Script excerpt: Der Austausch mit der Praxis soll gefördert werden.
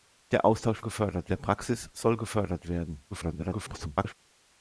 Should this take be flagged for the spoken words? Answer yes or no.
yes